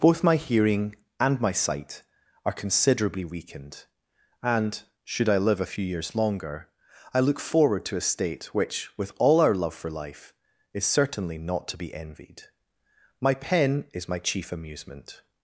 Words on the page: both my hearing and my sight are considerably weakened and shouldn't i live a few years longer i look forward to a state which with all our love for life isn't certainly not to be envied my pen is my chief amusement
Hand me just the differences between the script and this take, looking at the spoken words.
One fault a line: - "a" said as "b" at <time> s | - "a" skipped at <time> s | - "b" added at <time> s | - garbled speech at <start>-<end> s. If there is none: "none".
- "shouldn't" said as "should" at 5.0 s
- "isn't" said as "is" at 10.7 s